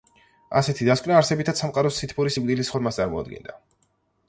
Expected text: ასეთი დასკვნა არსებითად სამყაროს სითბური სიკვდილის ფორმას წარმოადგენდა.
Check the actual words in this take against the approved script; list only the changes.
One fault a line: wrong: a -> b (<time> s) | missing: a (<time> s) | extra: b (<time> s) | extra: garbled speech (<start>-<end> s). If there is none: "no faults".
no faults